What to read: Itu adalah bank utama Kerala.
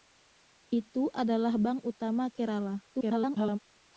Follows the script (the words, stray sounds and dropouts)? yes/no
no